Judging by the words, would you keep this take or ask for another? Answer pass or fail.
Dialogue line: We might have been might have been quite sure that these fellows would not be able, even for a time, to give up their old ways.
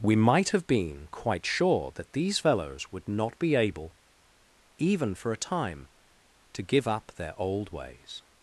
fail